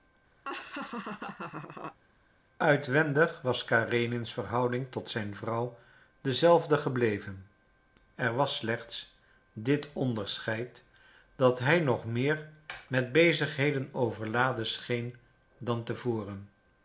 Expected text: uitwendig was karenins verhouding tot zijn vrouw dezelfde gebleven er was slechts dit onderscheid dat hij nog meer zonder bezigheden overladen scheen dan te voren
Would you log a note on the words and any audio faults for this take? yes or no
yes